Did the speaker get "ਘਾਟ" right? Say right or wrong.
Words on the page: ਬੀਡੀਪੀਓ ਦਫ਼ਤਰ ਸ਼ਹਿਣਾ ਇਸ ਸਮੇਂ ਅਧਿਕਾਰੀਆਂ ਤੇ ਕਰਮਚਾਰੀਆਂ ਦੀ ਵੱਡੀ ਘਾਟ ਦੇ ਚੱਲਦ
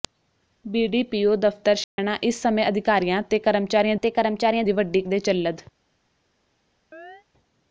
wrong